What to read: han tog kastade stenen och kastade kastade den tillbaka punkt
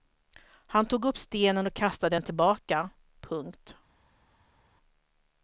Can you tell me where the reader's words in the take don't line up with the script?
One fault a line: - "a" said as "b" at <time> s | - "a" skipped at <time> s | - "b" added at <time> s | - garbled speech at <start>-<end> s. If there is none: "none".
- "kastade" said as "upp" at 1.1 s
- "kastade" skipped at 2.1 s